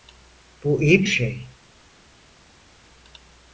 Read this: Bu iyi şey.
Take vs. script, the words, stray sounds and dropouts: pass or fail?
pass